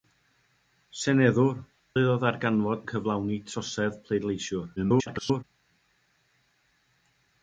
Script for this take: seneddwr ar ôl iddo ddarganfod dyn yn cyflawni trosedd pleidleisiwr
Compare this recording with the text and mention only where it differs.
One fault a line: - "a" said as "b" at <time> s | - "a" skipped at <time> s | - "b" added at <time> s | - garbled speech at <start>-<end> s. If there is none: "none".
- "ar ôl" skipped at 1.6 s
- "dyn" skipped at 2.8 s
- garbled speech at 4.8-5.4 s